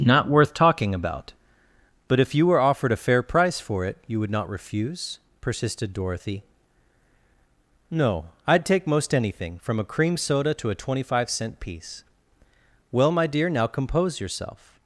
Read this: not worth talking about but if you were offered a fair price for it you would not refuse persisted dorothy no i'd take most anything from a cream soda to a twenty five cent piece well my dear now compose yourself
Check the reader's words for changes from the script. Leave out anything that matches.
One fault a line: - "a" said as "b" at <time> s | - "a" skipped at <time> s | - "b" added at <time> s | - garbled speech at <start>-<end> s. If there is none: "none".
none